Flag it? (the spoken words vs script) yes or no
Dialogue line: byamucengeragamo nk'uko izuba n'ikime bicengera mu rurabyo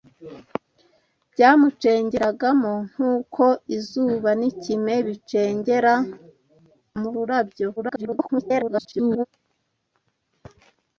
yes